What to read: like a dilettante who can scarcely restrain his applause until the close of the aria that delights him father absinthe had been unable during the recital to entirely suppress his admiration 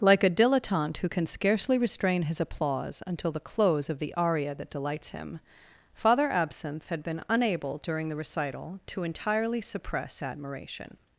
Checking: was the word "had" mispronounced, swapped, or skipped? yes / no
no